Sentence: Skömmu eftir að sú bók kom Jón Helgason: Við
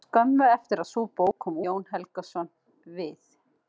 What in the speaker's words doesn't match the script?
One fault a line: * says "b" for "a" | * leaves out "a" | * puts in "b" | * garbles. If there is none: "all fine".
all fine